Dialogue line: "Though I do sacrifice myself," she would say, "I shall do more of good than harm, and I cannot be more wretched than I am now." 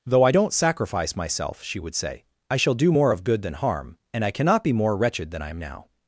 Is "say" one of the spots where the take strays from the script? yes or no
no